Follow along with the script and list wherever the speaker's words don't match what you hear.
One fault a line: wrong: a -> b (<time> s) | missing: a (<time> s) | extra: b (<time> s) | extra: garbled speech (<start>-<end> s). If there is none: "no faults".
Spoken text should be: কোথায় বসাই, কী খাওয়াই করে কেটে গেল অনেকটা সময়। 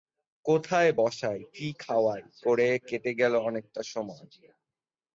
no faults